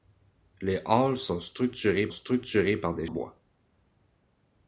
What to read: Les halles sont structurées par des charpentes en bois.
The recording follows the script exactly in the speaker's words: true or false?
false